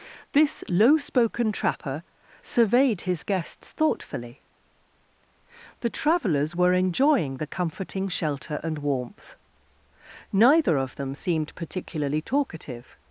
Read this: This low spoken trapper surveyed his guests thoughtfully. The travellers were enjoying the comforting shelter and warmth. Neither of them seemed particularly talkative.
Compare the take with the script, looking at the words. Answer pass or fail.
pass